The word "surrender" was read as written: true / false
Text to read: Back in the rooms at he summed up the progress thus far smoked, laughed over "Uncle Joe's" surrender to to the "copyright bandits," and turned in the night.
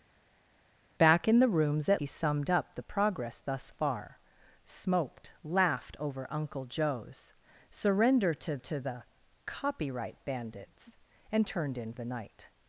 true